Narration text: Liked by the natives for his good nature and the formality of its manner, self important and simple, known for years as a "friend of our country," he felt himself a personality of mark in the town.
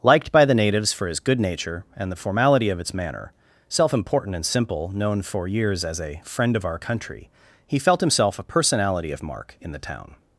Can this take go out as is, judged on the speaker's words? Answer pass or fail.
pass